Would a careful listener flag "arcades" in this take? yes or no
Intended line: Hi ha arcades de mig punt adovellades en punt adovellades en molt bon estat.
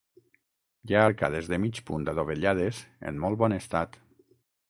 no